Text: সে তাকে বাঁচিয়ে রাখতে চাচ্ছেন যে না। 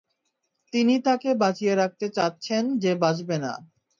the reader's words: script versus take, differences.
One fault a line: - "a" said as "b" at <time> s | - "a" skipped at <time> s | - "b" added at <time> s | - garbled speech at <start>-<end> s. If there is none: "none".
- "সে" said as "তিনি" at 0.7 s
- "বাঁচবে" added at 3.0 s